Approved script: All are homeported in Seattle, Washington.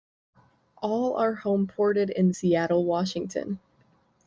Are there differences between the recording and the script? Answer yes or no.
no